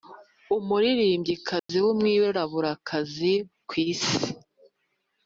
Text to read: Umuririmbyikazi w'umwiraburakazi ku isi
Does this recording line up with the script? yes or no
yes